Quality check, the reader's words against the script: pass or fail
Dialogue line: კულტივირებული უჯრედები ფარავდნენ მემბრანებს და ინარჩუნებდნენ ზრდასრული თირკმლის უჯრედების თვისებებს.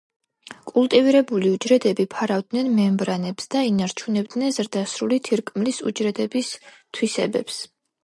pass